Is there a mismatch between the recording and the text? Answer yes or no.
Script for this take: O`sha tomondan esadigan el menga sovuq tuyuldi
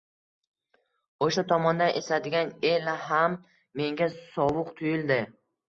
yes